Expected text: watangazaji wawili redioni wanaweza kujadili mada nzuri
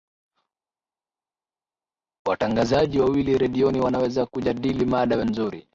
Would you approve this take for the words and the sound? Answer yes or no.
yes